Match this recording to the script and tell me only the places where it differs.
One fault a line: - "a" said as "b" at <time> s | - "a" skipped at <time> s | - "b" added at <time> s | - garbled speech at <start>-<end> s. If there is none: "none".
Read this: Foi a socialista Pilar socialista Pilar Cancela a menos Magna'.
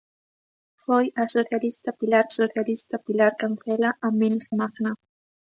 none